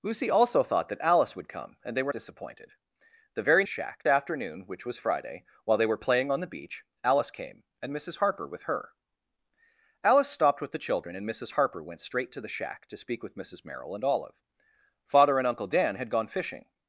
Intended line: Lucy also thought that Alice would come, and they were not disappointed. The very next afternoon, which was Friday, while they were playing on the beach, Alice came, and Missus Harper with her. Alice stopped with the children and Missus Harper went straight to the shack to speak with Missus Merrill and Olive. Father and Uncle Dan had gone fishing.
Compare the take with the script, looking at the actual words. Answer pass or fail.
fail